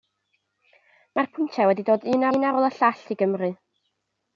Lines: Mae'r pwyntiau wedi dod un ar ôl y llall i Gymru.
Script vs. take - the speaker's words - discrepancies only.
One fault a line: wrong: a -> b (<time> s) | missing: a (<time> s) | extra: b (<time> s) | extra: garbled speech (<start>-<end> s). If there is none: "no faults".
extra: un (2.4 s)